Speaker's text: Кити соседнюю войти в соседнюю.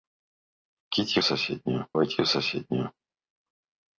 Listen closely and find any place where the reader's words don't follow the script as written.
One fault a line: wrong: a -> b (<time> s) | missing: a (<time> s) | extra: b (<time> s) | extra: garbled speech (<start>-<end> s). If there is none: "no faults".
no faults